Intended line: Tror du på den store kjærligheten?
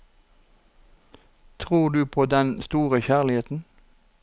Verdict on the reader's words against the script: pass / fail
pass